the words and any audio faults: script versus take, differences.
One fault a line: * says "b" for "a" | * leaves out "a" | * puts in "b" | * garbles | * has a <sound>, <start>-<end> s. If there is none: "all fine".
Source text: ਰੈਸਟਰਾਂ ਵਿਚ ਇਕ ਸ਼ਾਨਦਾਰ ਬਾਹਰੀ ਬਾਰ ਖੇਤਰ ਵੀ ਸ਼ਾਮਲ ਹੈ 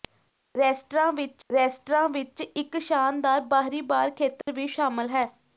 * puts in "ਰੈਸਟਰਾਂ ਵਿਚ"
* has a dropout, 4.4-4.5 s